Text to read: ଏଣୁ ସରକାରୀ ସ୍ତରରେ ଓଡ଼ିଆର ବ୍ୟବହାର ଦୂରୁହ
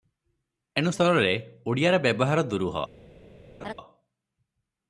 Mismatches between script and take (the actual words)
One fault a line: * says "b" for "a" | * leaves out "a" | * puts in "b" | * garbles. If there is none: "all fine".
* leaves out "ସରକାରୀ"